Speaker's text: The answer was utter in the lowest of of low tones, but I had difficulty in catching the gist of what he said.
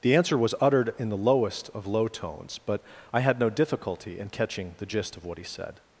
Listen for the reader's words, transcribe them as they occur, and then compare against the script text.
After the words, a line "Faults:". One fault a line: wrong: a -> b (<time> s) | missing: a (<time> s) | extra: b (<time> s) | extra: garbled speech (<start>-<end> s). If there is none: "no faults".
The answer was uttered in the lowest of low tones, but I had no difficulty in catching the gist of what he said.
Faults:
wrong: utter -> uttered (0.6 s)
missing: of (1.9 s)
extra: no (3.4 s)